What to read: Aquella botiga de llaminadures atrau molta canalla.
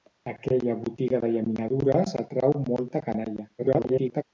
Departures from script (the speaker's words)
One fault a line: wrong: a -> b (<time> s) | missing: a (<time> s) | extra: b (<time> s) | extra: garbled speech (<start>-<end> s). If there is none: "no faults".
extra: garbled speech (3.6-4.2 s)